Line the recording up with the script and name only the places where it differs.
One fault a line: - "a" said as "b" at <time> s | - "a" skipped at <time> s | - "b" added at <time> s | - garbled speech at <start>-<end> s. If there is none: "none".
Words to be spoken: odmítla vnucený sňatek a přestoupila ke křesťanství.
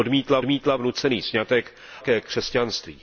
- "odmítla" added at 0.4 s
- "a přestoupila" skipped at 1.7 s